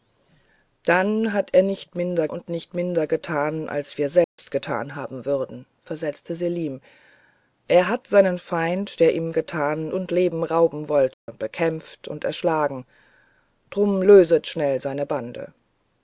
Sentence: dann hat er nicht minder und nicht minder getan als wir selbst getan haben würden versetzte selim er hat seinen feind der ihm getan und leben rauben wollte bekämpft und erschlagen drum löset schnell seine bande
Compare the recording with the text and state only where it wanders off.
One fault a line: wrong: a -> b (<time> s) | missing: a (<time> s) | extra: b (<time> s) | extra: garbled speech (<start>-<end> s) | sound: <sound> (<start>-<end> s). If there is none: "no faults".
sound: dropout (4.2-4.4 s)
sound: dropout (11.1-11.3 s)